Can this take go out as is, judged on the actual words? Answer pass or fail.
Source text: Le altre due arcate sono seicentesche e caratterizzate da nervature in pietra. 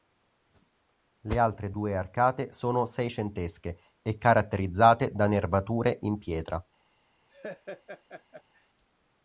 pass